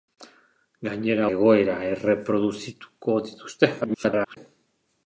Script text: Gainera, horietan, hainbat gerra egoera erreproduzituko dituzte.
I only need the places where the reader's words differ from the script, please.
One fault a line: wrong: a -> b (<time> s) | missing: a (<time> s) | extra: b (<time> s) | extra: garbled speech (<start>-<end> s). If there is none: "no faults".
missing: horietan hainbat gerra (1.3 s)
extra: garbled speech (3.8-4.4 s)